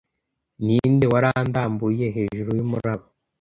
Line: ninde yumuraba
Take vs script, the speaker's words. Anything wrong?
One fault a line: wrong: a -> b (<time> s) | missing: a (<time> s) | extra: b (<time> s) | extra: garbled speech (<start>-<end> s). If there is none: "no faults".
extra: warandambuye hejuru (1.1 s)